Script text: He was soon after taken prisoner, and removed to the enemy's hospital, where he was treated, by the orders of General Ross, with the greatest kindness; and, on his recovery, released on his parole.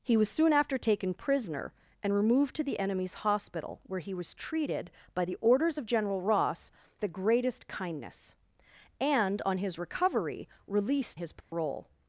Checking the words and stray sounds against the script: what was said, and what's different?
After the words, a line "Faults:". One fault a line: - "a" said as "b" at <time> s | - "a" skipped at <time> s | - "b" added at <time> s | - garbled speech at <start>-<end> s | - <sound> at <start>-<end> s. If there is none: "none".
He was soon after taken prisoner, and removed to the enemy's hospital, where he was treated, by the orders of General Ross, the greatest kindness; and, on his recovery, released his parole.
Faults:
- "with" skipped at 6.7 s
- "on" skipped at 11.2 s
- dropout at 11.4-11.5 s